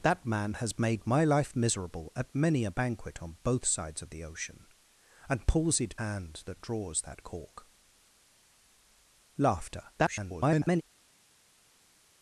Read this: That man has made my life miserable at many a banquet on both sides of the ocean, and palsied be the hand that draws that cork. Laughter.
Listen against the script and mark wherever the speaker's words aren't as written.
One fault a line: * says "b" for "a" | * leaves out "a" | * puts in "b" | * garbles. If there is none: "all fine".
* leaves out "be the"
* garbles